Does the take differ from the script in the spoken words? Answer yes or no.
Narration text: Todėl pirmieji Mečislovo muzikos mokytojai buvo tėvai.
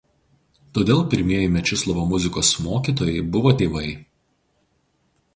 no